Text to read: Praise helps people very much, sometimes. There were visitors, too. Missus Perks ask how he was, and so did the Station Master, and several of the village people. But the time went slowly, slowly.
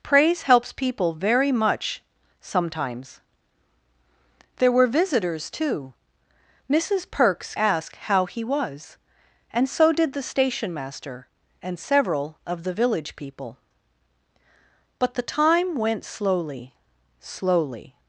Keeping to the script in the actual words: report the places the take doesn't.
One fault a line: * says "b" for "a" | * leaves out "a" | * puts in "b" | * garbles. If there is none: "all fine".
all fine